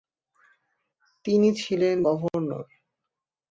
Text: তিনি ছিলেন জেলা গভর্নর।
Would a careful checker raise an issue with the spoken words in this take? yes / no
yes